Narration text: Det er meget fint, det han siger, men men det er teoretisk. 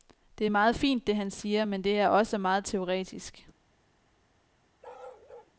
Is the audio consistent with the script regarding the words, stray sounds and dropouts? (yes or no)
no